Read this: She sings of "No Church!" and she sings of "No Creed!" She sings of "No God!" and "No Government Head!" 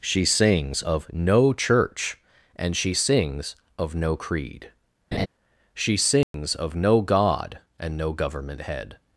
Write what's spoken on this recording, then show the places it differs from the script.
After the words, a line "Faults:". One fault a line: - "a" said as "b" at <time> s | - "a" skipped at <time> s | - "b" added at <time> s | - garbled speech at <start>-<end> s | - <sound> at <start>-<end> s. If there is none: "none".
She sings of "No Church!" and she sings of "No Creed!" She sings of "No God!" and "No Government Head!"
Faults:
- laugh at 5.1-5.3 s
- dropout at 6.2-6.3 s